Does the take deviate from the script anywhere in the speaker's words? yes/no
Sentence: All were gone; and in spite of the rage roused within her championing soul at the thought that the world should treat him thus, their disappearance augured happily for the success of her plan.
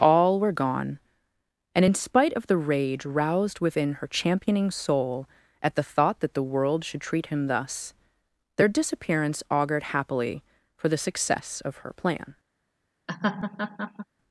no